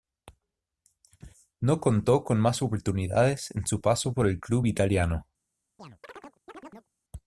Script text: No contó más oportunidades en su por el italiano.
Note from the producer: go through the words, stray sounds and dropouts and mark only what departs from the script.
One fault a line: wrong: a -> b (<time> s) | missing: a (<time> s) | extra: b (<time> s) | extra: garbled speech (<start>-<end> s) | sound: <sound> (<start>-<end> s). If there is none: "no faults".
extra: con (2.2 s)
extra: paso (3.8 s)
extra: club (4.4 s)
sound: chirp (5.8-6.9 s)